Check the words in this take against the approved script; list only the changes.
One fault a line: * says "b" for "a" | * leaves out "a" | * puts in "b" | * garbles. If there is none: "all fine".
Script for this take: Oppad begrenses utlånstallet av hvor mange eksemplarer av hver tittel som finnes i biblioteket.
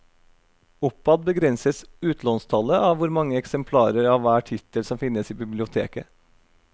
all fine